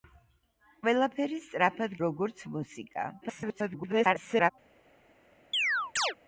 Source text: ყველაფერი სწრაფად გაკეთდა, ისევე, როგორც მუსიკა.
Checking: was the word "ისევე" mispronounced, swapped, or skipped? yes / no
yes